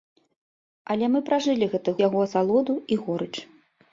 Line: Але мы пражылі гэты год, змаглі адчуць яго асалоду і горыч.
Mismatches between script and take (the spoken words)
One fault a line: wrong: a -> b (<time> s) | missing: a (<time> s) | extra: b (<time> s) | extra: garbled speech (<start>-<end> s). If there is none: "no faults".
missing: год змаглі адчуць (1.9 s)